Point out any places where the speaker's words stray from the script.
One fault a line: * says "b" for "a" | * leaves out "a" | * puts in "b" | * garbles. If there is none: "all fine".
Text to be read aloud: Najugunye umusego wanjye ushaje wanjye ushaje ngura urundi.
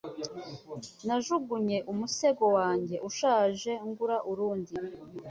* leaves out "wanjye ushaje"